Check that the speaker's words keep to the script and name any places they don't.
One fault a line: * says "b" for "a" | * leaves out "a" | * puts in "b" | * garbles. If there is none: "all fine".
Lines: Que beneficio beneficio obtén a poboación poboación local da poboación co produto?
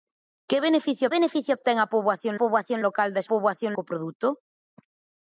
all fine